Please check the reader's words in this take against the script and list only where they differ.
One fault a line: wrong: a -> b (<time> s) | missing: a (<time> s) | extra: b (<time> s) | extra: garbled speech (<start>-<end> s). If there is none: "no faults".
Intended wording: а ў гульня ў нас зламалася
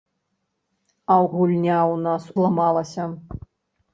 no faults